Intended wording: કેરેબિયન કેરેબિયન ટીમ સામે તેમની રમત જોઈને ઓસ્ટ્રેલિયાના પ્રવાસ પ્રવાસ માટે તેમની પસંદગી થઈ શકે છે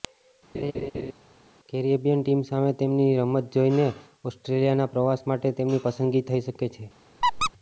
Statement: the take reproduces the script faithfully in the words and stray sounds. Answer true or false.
false